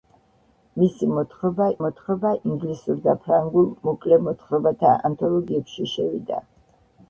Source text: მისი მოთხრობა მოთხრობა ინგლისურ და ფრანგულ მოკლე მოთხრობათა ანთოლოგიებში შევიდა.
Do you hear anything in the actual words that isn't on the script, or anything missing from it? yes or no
no